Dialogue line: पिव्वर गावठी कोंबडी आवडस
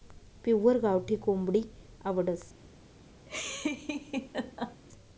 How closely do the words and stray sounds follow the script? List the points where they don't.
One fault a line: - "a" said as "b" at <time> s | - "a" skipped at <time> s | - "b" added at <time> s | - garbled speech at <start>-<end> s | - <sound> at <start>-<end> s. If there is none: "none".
- laugh at 3.3-4.8 s